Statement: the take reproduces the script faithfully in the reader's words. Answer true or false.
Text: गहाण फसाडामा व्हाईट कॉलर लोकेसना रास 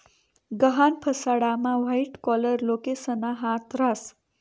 false